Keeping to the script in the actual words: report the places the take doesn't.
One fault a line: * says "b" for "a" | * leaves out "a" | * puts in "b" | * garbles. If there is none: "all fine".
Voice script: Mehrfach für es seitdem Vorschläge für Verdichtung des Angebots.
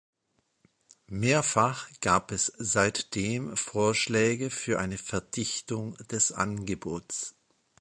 * says "gab" for "für"
* puts in "eine"